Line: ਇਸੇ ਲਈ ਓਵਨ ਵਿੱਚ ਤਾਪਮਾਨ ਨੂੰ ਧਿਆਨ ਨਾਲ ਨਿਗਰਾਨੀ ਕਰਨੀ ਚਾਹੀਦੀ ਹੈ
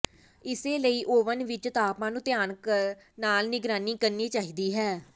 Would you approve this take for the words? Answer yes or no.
yes